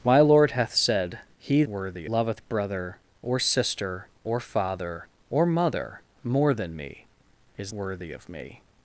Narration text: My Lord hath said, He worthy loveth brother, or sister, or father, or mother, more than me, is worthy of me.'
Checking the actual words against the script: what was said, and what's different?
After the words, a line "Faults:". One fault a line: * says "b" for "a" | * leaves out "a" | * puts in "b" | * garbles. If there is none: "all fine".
My Lord hath said, He worthy loveth brother, or sister, or father, or mother, more than me, is worthy of me.'
Faults:
all fine